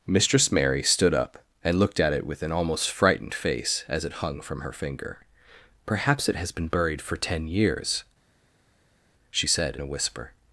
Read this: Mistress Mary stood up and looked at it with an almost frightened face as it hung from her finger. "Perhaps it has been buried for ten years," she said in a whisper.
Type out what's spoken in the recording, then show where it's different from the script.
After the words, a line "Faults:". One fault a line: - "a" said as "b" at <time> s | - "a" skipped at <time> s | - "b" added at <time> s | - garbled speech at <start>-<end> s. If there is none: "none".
Mistress Mary stood up and looked at it with an almost frightened face as it hung from her finger. "Perhaps it has been buried for ten years," she said a whisper.
Faults:
- "in" skipped at 9.8 s